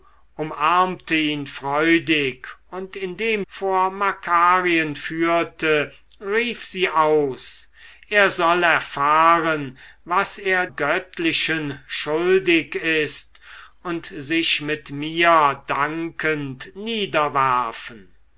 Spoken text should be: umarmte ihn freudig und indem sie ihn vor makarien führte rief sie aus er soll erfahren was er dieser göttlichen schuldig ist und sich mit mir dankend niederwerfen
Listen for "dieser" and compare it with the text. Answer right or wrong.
wrong